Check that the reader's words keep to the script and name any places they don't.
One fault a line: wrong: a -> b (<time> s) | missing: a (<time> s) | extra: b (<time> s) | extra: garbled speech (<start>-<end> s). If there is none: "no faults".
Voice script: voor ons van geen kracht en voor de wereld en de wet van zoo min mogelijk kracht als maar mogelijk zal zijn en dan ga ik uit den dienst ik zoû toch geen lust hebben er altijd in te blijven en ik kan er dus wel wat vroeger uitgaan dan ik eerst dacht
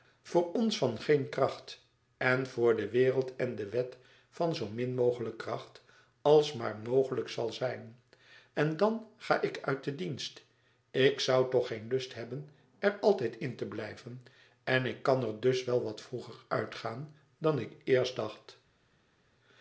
no faults